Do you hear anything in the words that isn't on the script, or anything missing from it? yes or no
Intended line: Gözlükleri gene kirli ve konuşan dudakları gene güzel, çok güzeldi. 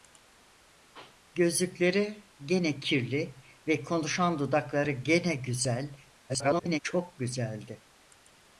yes